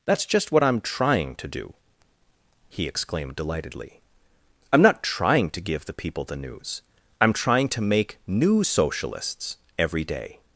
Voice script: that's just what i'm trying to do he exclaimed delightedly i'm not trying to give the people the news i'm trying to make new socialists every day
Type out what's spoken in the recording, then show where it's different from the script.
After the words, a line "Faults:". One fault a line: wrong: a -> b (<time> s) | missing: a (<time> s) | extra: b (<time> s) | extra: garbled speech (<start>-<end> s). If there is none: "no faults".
that's just what i'm trying to do he exclaimed delightedly i'm not trying to give the people the news i'm trying to make new socialists every day
Faults:
no faults